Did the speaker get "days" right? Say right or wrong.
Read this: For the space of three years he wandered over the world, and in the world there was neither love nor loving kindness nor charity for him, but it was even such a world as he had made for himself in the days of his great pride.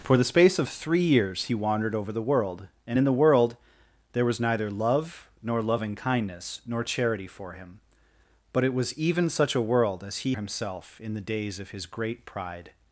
right